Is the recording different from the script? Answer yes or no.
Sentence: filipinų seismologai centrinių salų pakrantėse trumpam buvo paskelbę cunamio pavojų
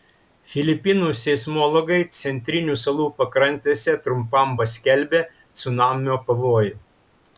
yes